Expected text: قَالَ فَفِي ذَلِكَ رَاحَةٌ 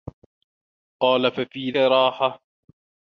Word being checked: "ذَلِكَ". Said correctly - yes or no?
no